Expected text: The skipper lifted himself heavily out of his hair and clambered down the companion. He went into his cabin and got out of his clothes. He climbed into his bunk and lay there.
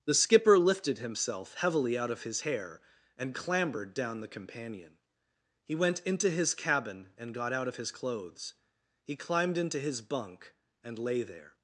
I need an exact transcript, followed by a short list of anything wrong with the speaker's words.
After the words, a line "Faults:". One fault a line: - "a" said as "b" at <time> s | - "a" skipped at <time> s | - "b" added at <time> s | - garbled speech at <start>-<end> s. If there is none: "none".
The skipper lifted himself heavily out of his hair and clambered down the companion. He went into his cabin and got out of his clothes. He climbed into his bunk and lay there.
Faults:
none